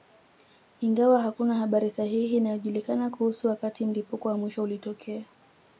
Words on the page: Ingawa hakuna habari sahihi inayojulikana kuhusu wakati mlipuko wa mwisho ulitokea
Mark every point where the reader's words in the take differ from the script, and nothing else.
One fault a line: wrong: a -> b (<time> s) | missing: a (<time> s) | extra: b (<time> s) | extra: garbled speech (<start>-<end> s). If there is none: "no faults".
no faults